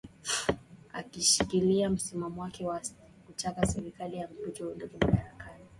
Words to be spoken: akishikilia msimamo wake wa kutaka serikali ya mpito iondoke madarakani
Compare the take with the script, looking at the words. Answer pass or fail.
pass